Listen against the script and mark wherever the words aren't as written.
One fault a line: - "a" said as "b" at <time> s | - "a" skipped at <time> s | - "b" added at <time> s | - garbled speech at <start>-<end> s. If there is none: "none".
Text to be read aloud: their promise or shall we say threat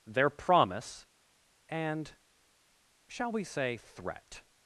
- "or" said as "and" at 1.7 s